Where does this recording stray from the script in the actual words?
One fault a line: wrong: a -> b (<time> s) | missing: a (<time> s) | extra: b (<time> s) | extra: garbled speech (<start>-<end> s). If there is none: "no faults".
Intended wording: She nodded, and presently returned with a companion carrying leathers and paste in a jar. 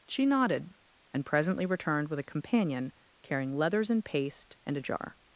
wrong: in -> and (4.7 s)